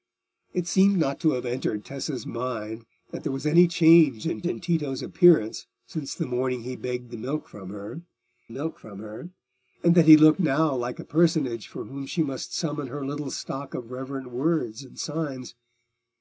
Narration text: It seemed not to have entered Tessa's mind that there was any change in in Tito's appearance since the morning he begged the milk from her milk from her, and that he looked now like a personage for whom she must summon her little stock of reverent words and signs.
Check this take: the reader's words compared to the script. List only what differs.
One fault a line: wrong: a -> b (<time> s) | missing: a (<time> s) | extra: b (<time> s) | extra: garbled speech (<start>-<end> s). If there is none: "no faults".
no faults